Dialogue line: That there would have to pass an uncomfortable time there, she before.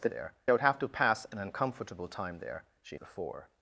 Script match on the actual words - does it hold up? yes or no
yes